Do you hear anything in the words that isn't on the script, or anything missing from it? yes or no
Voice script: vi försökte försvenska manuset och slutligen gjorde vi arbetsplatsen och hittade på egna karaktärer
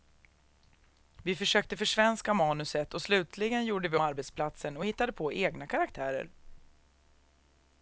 no